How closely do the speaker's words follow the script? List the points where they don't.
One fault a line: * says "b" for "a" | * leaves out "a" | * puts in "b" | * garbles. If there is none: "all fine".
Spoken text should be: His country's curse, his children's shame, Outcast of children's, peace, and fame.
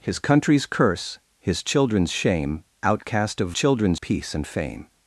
all fine